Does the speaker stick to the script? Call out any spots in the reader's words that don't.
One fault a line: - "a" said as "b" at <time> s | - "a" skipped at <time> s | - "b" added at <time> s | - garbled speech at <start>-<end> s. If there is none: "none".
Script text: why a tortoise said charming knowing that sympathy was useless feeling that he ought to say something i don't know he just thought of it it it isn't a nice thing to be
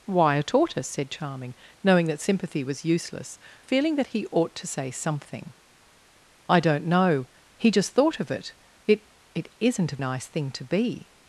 none